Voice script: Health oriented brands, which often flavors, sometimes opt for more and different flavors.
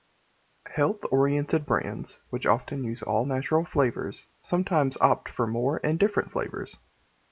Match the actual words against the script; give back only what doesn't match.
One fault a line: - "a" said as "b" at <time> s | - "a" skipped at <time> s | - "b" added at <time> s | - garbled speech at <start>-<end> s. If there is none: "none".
- "use all natural" added at 2.8 s